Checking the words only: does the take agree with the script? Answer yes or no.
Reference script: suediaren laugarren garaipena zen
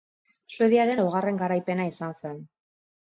no